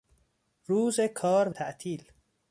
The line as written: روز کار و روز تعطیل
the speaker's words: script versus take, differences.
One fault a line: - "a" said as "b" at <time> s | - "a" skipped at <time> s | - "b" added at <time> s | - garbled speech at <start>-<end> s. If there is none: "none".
- "روز" skipped at 1.6 s